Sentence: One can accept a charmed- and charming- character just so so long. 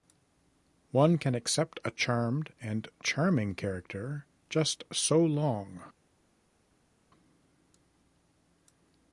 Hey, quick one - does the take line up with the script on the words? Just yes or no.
no